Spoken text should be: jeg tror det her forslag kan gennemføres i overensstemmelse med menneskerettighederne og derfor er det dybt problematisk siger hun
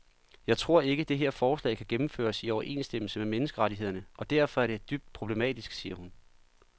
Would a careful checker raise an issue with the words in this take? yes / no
yes